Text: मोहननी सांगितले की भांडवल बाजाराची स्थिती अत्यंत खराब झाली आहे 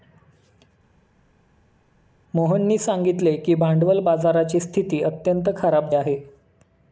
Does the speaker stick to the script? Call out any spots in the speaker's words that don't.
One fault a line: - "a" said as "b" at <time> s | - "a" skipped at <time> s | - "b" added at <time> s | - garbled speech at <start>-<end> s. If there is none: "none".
- "झाली" skipped at 5.9 s